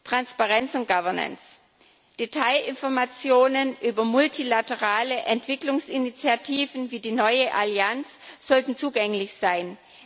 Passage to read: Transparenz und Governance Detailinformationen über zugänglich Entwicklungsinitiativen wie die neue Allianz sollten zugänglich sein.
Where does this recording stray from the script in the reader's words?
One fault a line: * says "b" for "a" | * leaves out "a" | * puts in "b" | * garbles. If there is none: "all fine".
* says "multilaterale" for "zugänglich"